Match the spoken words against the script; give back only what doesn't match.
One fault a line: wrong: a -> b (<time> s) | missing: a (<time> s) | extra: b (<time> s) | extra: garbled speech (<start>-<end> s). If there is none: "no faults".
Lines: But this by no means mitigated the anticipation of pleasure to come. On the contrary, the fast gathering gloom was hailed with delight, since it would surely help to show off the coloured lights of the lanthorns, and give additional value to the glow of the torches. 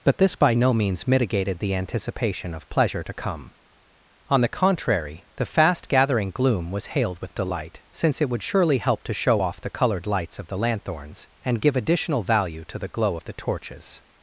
no faults